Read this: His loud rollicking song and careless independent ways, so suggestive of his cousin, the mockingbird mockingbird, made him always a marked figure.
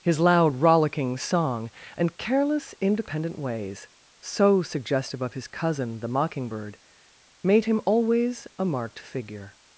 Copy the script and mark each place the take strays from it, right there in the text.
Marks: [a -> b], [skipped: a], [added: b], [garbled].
His loud rollicking song and careless independent ways, so suggestive of his cousin, the mockingbird [skipped: mockingbird,] made him always a marked figure.